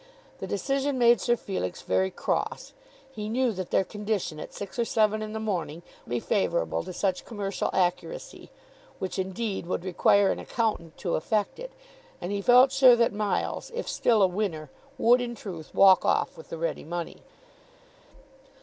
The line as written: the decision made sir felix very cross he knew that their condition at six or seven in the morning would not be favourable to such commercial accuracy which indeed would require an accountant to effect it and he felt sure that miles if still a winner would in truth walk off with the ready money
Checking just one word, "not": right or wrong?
wrong